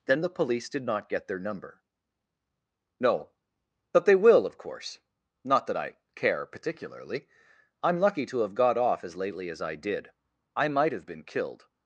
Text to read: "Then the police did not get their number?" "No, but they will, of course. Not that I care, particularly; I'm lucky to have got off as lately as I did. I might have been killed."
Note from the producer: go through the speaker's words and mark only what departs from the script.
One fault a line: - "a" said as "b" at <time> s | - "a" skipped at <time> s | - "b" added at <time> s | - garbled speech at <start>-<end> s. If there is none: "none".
none